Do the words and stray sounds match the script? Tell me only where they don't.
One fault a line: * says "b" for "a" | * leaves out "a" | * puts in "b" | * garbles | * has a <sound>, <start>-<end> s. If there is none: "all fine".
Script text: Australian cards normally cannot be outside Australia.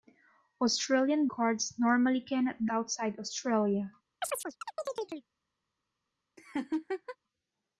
* has a chirp, 4.2-5.3 s
* has a laugh, 6.4-7.2 s